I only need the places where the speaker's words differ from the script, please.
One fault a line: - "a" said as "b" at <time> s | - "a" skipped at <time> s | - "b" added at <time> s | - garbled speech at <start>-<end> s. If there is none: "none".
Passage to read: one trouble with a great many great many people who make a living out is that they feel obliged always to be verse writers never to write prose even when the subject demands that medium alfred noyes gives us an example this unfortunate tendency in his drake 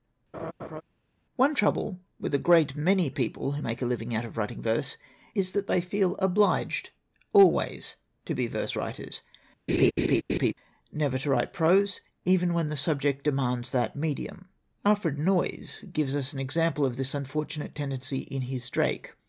- "great many" skipped at 3.1 s
- "of writing verse" added at 4.3 s
- "of" added at 16.9 s